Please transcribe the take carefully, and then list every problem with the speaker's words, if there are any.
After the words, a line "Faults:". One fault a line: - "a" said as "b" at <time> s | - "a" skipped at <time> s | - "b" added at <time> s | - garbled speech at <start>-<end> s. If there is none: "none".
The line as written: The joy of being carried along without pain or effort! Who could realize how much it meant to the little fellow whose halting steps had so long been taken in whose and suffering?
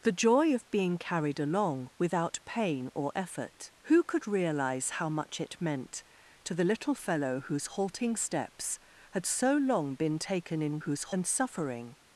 The joy of being carried along without pain or effort! Who could realize how much it meant to the little fellow whose halting steps had so long been taken in whose and suffering?
Faults:
none